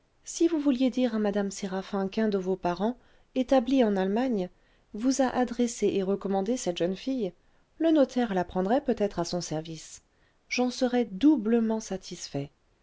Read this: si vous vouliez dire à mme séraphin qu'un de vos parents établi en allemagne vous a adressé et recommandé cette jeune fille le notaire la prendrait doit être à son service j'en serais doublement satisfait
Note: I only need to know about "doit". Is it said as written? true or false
false